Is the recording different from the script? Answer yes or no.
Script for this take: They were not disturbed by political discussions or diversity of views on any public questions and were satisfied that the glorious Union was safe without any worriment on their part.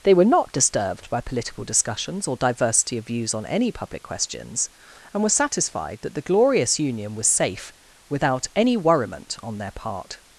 no